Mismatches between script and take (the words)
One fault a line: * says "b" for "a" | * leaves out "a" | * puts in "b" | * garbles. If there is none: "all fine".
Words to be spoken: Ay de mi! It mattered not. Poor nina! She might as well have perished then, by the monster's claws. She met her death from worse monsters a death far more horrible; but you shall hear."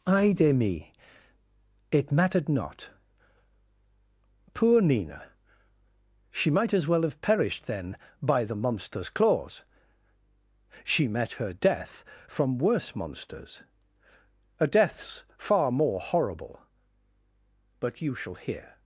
* says "deaths" for "death"